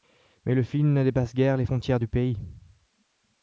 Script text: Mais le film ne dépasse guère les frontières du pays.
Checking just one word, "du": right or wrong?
right